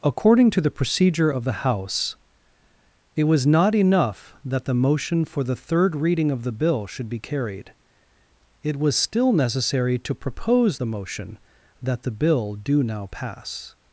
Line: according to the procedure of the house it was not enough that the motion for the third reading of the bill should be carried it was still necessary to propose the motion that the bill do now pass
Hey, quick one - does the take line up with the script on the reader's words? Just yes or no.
yes